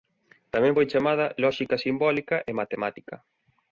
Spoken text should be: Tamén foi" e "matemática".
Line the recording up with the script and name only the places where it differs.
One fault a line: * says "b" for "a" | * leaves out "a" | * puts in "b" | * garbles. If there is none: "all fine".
* puts in "chamada lóxica simbólica"